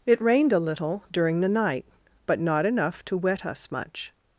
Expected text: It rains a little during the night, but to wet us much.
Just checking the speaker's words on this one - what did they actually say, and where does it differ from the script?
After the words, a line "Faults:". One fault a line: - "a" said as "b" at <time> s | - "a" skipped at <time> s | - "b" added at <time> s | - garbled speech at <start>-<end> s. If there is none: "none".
It rained a little during the night, but not enough to wet us much.
Faults:
- "rains" said as "rained" at 0.2 s
- "not enough" added at 2.4 s